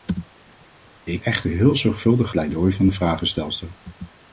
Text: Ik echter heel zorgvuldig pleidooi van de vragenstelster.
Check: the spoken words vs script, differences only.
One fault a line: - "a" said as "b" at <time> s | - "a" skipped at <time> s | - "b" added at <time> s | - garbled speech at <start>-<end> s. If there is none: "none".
none